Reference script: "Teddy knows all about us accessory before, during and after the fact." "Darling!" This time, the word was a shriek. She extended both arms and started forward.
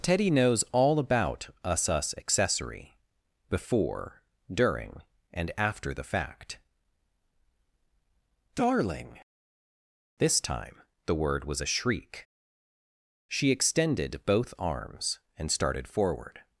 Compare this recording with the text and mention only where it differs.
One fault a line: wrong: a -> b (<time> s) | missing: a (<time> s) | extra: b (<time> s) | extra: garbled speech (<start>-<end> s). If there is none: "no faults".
extra: us (1.9 s)